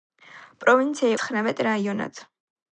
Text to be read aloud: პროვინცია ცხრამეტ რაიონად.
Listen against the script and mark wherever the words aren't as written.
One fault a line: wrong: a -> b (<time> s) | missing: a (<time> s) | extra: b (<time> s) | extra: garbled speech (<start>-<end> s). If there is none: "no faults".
no faults